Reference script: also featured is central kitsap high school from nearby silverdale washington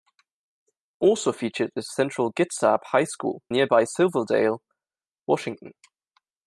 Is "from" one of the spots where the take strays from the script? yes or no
yes